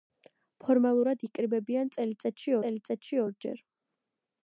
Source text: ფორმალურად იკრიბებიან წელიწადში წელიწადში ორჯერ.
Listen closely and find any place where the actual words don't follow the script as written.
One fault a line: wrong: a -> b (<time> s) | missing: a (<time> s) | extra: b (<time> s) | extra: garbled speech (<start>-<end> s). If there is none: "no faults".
no faults